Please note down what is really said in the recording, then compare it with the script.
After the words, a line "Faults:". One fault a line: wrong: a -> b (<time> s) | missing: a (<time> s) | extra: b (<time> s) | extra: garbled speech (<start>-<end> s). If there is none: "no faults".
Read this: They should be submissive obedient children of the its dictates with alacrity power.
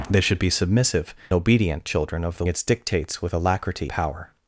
They should be submissive obedient children of the its dictates with alacrity power.
Faults:
no faults